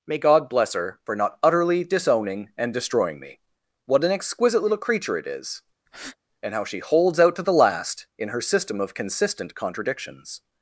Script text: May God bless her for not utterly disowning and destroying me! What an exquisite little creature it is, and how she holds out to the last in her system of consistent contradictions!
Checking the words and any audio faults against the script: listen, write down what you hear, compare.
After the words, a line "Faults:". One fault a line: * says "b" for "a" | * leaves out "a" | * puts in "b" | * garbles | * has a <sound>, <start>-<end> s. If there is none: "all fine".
May God bless her for not utterly disowning and destroying me! What an exquisite little creature it is, and how she holds out to the last in her system of consistent contradictions!
Faults:
* has a breath, 5.9-6.2 s